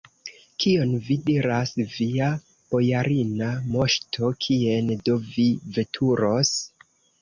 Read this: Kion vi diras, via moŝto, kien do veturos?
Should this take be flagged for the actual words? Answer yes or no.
yes